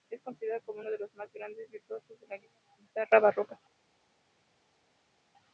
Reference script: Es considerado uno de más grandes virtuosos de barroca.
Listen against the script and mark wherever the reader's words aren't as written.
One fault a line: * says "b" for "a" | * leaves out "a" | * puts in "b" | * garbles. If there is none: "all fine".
* puts in "como"
* puts in "los"
* puts in "la guitarra"